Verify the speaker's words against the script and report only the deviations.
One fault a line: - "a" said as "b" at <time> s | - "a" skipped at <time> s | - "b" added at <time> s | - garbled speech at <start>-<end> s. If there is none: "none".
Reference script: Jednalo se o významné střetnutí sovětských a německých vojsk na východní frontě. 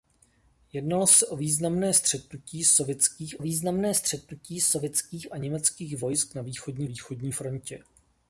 - "významné střetnutí sovětských" added at 3.4 s
- "východní" added at 6.8 s